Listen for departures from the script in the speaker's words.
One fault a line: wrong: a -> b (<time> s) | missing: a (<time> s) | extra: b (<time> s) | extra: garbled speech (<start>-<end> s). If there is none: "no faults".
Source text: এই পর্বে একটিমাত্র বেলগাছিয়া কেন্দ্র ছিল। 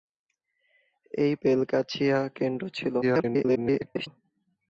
missing: পর্বে একটিমাত্র (1.3 s)
extra: garbled speech (3.0-4.1 s)